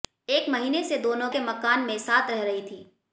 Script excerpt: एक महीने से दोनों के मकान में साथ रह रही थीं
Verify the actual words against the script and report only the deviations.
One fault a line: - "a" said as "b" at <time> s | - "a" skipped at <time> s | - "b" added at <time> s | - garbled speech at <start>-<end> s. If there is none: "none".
none